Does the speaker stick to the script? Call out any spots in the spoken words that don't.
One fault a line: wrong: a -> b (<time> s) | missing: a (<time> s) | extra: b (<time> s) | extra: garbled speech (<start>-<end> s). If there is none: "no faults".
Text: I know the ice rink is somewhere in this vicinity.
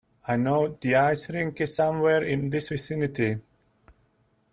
no faults